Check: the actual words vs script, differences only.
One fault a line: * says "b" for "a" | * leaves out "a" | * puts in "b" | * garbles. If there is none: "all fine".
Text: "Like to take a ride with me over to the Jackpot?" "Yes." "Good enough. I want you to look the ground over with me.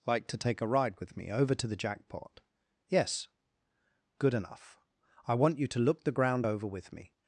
all fine